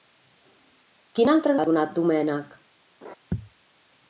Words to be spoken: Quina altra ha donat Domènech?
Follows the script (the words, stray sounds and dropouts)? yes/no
no